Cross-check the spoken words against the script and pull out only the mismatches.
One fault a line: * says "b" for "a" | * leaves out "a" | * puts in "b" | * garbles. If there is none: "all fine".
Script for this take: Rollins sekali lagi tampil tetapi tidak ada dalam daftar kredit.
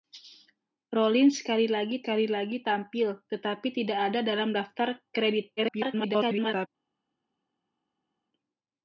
* puts in "sekali lagi"
* garbles